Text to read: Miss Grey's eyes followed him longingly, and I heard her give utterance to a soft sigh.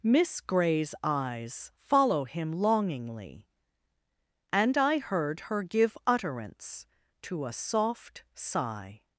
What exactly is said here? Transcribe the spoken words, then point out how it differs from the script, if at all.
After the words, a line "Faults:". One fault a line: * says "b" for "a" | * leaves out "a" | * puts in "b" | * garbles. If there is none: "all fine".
Miss Grey's eyes follow him longingly, and I heard her give utterance to a soft sigh.
Faults:
* says "follow" for "followed"